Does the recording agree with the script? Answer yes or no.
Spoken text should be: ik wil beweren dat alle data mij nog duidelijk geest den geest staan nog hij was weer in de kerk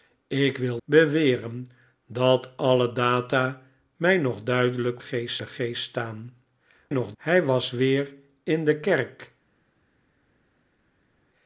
yes